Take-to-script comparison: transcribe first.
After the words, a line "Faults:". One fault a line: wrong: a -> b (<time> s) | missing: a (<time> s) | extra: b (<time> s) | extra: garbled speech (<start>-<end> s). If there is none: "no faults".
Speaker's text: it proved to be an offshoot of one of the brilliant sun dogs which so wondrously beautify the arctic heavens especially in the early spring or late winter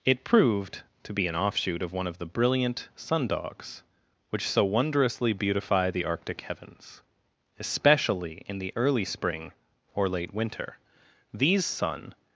it proved to be an offshoot of one of the brilliant sun dogs which so wondrously beautify the arctic heavens especially in the early spring or late winter these sun
Faults:
extra: these sun (11.3 s)